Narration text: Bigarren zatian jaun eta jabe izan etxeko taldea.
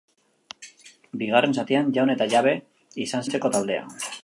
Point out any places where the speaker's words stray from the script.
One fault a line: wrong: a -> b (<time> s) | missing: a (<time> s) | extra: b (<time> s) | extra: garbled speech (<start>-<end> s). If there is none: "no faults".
no faults